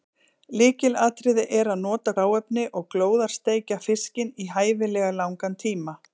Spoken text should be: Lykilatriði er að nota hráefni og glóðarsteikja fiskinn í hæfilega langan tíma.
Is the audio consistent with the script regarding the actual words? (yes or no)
yes